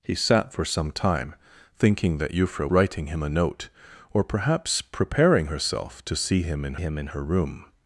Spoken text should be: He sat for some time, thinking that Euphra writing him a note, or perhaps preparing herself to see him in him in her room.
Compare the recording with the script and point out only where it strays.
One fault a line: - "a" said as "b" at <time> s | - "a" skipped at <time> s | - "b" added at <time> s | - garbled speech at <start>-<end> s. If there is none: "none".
none